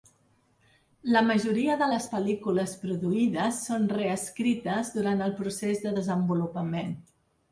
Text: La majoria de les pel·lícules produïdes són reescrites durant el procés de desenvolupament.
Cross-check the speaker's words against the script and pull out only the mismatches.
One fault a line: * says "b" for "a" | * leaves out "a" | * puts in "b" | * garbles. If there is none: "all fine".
all fine